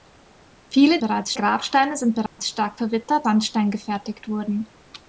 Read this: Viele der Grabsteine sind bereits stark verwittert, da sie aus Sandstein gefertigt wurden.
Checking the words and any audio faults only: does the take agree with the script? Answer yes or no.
no